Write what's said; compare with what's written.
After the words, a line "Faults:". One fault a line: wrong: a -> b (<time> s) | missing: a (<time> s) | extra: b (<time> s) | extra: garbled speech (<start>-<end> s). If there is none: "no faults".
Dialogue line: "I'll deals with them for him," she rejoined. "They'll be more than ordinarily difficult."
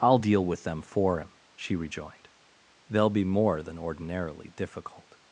"I'll deal with them for him," she rejoined. "They'll be more than ordinarily difficult."
Faults:
wrong: deals -> deal (0.2 s)